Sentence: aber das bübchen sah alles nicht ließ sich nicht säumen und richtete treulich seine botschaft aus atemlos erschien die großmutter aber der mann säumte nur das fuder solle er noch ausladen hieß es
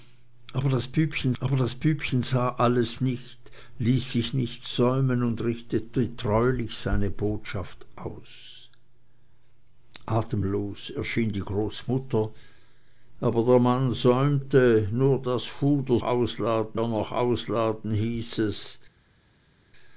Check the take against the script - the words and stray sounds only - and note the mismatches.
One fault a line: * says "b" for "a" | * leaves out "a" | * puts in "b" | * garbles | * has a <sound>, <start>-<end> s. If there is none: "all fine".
* puts in "aber das bübchen"
* says "ausladen" for "solle"